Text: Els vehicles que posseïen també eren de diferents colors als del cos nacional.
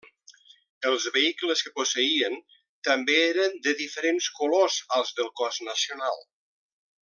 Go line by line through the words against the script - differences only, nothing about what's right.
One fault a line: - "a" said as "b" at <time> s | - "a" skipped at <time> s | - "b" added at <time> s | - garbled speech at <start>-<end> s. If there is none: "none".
none